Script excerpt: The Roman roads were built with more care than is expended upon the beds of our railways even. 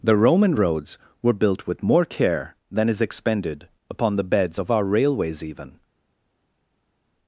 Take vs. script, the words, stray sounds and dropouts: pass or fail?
pass